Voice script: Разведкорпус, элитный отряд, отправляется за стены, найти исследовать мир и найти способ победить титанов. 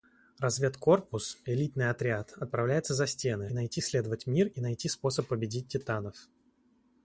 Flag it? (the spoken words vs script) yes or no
no